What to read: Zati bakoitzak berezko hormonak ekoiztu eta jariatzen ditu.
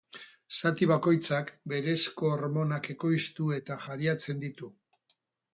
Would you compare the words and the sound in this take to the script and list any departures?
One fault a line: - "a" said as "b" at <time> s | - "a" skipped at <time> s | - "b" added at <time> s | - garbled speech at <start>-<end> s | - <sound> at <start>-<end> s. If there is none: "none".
none